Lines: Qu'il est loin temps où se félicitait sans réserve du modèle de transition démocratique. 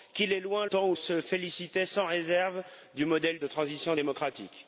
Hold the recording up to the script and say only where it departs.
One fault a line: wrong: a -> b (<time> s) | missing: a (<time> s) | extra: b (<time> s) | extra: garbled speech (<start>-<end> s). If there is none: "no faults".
no faults